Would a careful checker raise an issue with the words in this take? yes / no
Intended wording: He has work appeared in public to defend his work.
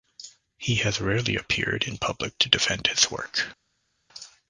yes